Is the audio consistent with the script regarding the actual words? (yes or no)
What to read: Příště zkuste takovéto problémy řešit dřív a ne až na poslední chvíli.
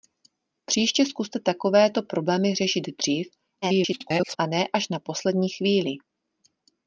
no